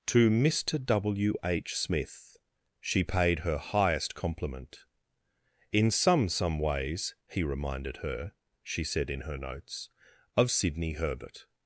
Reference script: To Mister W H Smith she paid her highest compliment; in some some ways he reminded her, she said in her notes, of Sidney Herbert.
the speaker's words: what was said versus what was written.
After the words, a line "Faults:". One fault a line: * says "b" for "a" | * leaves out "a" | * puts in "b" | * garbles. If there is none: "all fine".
To Mister W H Smith she paid her highest compliment; in some some ways he reminded her, she said in her notes, of Sidney Herbert.
Faults:
all fine